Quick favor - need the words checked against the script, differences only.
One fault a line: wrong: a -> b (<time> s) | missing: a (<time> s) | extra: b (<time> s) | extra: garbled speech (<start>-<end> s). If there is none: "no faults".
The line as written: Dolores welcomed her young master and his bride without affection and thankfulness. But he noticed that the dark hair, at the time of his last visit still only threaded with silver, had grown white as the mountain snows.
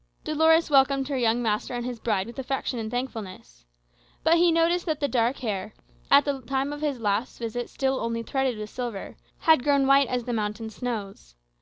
wrong: without -> with (2.2 s)